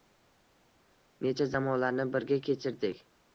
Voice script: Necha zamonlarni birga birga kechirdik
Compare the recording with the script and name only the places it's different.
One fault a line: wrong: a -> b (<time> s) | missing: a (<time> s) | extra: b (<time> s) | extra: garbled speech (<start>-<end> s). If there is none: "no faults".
missing: birga (2.4 s)